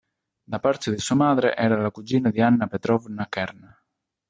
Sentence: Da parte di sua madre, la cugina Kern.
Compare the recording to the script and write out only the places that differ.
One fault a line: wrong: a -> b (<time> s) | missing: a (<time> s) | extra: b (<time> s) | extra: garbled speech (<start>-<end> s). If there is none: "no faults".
extra: era (1.6 s)
extra: di Anna Petrovna (2.3 s)